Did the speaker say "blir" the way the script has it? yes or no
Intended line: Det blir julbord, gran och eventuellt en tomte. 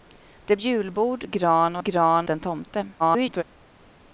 no